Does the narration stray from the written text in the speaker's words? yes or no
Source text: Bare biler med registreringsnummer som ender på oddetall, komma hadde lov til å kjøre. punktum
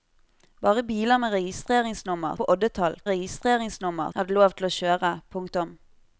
yes